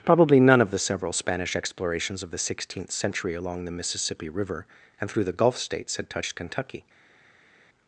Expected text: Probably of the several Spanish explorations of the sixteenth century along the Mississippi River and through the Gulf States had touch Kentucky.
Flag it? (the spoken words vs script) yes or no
yes